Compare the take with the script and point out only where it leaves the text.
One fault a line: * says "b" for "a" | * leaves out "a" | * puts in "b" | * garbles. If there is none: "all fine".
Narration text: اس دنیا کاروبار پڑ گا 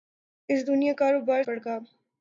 all fine